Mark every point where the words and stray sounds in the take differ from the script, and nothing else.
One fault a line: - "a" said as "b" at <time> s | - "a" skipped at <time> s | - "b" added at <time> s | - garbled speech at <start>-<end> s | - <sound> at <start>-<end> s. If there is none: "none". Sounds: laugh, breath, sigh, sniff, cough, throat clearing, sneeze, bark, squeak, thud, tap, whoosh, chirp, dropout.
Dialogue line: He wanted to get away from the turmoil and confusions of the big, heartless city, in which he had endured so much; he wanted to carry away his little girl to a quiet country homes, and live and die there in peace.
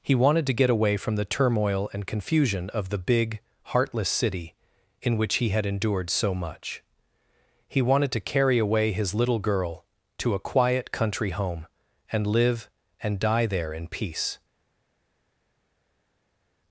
- "confusions" said as "confusion" at 2.1 s
- "homes" said as "home" at 11.3 s